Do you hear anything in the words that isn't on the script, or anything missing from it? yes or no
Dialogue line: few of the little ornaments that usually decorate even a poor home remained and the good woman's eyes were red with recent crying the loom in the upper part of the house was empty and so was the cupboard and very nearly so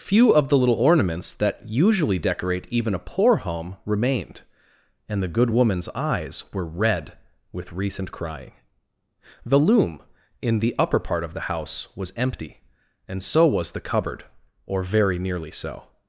yes